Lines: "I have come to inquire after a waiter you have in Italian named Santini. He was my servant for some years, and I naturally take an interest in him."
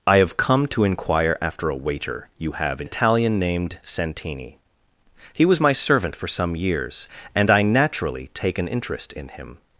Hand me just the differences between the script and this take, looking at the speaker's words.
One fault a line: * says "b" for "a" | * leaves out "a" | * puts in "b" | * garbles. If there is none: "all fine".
all fine